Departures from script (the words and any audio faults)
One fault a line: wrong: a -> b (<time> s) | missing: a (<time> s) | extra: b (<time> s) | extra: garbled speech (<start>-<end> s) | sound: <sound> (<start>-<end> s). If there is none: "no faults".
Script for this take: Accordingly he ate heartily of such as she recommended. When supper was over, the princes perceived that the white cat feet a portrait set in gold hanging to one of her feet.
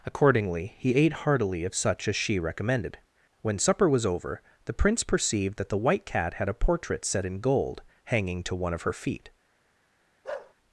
wrong: princes -> prince (4.7 s)
wrong: feet -> had (6.3 s)
sound: bark (10.2-10.5 s)